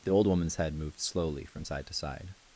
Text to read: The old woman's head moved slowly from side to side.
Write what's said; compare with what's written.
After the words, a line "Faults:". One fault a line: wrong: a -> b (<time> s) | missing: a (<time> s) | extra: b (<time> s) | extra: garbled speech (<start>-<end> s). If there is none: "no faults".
The old woman's head moved slowly from side to side.
Faults:
no faults